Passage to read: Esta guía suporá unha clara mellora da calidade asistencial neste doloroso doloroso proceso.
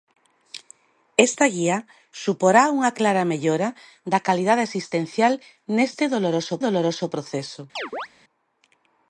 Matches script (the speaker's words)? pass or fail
pass